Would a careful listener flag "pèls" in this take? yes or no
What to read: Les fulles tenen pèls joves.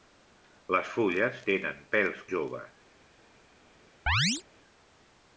no